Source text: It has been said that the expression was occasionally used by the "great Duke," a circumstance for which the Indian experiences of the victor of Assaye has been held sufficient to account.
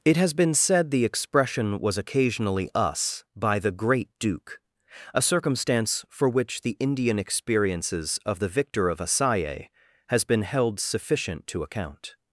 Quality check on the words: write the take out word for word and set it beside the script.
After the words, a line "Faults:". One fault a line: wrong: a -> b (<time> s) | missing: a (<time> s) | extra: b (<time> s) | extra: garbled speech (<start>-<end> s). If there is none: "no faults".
It has been said the expression was occasionally us by the "great Duke," a circumstance for which the Indian experiences of the victor of Assaye has been held sufficient to account.
Faults:
missing: that (0.9 s)
wrong: used -> us (2.7 s)